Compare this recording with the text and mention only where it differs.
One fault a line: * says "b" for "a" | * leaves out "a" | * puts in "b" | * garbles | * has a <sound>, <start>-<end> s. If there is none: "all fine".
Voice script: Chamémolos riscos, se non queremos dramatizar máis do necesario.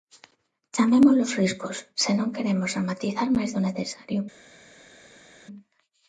all fine